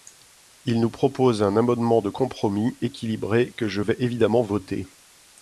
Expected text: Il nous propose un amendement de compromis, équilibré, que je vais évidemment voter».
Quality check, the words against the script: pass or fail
pass